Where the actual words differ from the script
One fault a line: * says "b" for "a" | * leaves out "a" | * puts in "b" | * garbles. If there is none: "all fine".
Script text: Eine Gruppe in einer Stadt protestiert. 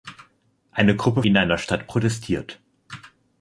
all fine